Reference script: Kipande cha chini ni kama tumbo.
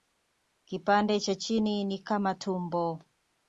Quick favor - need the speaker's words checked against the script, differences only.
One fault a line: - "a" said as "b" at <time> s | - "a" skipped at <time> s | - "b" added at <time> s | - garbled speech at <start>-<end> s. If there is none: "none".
none